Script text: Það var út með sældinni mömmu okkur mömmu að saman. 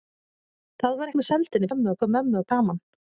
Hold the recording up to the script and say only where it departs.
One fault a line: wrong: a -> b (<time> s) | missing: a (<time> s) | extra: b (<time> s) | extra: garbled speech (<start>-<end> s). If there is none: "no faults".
no faults